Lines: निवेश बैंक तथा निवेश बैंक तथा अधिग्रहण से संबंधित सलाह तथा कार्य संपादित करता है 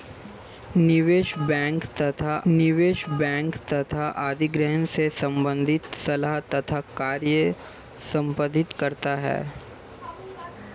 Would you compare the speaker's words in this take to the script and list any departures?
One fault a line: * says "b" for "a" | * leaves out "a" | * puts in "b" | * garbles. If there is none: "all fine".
all fine